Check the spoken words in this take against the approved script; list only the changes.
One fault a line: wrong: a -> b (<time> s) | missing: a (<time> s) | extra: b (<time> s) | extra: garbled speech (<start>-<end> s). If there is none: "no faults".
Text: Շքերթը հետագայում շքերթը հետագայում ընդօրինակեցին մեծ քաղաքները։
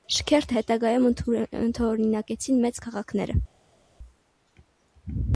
missing: շքերթը հետագայում (1.1 s)